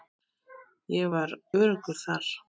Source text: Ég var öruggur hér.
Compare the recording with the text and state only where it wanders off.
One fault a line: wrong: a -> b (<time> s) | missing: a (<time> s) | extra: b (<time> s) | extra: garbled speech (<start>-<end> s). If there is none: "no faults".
wrong: hér -> þar (2.0 s)